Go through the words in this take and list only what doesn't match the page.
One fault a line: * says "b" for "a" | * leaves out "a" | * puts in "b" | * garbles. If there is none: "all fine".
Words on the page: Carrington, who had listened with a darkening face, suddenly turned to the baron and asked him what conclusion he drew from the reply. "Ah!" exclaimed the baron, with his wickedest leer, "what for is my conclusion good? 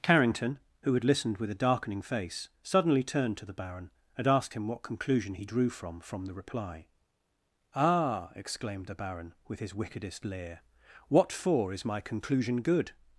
* puts in "from"